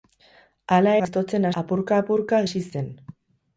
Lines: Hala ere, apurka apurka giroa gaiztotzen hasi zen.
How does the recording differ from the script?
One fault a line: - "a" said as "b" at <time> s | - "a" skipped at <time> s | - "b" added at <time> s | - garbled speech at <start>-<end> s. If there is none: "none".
- "ere" said as "gaiztotzen" at 1.1 s
- "giroa gaiztotzen" skipped at 2.4 s